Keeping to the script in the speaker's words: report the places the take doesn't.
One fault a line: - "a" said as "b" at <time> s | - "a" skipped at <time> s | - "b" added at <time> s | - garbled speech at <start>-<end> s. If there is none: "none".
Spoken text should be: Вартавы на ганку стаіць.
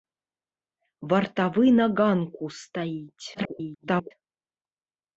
- garbled speech at 3.3-4.1 s